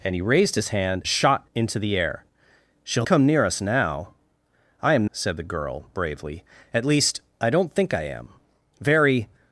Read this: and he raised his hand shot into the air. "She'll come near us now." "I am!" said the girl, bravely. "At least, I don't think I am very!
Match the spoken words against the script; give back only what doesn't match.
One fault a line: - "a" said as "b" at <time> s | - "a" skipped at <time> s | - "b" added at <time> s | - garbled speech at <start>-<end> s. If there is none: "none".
none